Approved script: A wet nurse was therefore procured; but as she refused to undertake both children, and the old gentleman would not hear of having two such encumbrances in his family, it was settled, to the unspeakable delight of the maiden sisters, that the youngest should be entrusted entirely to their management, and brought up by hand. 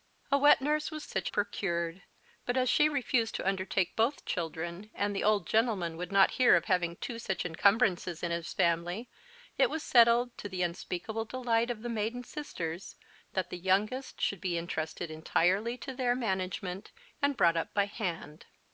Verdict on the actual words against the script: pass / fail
fail